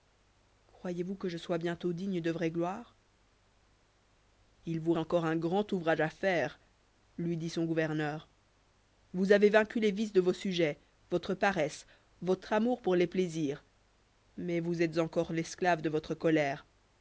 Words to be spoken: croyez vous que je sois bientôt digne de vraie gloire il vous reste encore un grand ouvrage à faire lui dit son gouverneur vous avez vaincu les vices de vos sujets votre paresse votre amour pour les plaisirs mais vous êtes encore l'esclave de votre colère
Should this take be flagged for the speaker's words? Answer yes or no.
yes